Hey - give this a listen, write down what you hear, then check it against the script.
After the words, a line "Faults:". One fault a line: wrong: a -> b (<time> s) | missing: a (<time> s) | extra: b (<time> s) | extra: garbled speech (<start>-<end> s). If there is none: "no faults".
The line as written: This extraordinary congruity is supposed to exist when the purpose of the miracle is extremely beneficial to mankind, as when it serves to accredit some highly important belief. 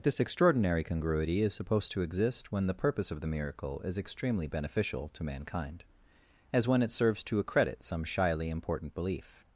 This extraordinary congruity is supposed to exist when the purpose of the miracle is extremely beneficial to mankind, as when it serves to accredit some shyly important belief.
Faults:
wrong: highly -> shyly (8.0 s)